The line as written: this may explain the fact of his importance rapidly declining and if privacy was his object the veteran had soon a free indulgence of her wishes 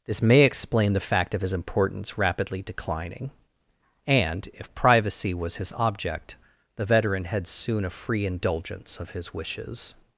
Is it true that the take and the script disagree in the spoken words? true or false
true